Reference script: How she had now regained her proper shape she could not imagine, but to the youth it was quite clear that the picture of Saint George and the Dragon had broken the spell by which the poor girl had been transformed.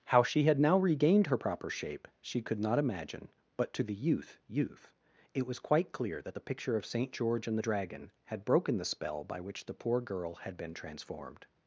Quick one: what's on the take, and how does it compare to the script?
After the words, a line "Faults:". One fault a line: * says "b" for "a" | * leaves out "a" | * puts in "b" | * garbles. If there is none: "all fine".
How she had now regained her proper shape she could not imagine, but to the youth youth it was quite clear that the picture of Saint George and the Dragon had broken the spell by which the poor girl had been transformed.
Faults:
* puts in "youth"